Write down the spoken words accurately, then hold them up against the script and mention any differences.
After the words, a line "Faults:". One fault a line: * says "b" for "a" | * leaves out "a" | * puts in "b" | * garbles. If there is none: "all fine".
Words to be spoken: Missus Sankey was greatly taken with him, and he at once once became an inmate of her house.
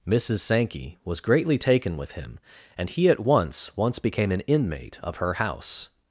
Missus Sankey was greatly taken with him, and he at once once became an inmate of her house.
Faults:
all fine